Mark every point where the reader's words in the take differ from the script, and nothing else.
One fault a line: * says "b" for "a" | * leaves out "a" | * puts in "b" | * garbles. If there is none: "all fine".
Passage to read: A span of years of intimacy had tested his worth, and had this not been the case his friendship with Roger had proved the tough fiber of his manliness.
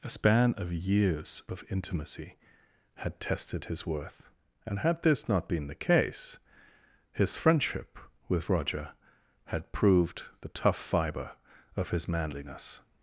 all fine